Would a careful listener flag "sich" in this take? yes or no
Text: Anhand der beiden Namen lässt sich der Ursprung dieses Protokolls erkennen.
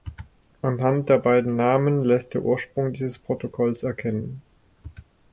yes